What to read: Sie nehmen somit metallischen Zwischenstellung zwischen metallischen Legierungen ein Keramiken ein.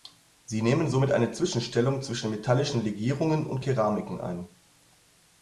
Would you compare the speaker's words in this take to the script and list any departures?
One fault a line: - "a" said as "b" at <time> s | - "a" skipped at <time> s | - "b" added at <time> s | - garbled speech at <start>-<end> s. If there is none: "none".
- "metallischen" said as "eine" at 1.1 s
- "ein" said as "und" at 3.5 s